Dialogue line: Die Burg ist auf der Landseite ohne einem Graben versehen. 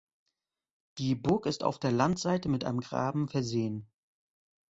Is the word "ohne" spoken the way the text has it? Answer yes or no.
no